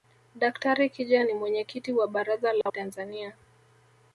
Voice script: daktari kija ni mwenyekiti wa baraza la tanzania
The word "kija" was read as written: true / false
true